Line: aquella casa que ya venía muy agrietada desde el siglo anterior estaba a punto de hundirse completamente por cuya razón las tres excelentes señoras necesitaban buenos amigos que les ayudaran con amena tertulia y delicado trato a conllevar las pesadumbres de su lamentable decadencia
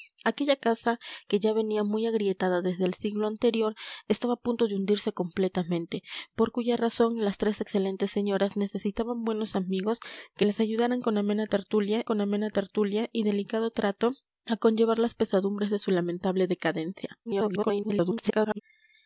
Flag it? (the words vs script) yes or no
yes